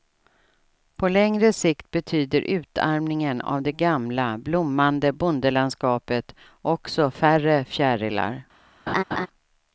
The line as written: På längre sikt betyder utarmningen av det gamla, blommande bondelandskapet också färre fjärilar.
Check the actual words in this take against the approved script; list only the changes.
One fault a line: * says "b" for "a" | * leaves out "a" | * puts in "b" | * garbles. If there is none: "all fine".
all fine